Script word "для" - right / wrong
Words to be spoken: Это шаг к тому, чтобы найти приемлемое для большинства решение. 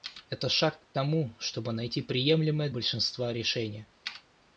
wrong